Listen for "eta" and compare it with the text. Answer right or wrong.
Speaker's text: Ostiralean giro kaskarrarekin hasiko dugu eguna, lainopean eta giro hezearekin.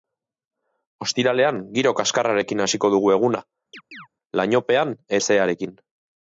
wrong